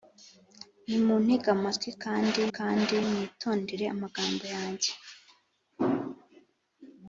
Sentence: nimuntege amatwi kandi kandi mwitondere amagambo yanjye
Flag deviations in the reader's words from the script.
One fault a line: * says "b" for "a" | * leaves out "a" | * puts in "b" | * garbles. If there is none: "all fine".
all fine